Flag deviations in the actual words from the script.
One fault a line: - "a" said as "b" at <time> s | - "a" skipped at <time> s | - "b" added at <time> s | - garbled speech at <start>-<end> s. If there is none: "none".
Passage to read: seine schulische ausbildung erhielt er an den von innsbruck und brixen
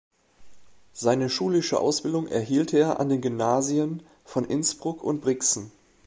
- "gymnasien" added at 3.2 s